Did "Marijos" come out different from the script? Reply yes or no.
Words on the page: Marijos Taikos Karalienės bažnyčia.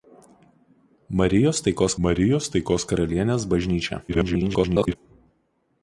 no